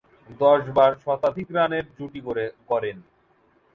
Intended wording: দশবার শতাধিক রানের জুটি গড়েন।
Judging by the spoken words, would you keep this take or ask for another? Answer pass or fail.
pass